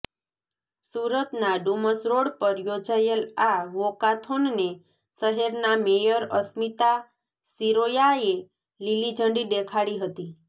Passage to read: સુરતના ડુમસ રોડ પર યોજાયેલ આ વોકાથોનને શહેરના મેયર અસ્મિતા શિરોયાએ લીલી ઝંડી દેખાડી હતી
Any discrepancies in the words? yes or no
no